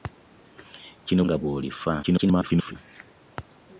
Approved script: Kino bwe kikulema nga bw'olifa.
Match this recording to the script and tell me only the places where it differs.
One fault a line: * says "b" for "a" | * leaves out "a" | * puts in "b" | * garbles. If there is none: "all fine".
* leaves out "bwe kikulema"
* garbles